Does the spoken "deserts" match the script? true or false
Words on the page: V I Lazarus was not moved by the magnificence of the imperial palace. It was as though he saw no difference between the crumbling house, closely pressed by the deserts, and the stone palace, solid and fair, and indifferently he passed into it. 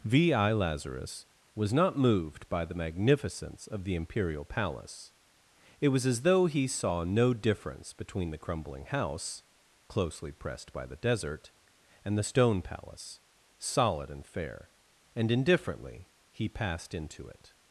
false